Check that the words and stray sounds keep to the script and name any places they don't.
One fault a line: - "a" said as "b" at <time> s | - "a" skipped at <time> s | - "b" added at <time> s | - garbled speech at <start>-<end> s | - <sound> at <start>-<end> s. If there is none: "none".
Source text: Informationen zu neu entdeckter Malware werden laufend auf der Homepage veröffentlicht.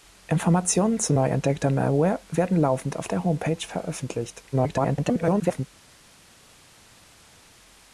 - garbled speech at 4.5-5.7 s